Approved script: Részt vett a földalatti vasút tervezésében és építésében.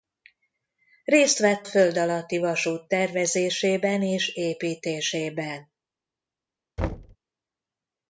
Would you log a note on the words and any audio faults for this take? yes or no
yes